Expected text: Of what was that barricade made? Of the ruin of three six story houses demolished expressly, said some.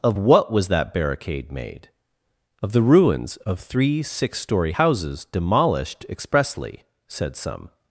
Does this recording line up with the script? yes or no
no